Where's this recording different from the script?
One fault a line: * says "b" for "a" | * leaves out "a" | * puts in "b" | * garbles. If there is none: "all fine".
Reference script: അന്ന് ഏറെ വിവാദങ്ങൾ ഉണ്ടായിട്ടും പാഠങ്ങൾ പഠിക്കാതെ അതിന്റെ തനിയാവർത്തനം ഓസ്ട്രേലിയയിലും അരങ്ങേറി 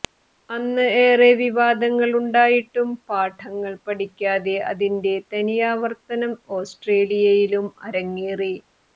all fine